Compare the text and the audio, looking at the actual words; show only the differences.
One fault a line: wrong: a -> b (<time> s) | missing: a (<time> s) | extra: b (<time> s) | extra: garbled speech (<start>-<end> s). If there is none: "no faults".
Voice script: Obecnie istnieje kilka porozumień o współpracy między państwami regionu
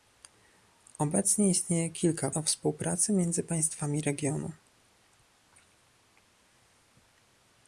missing: porozumień (2.3 s)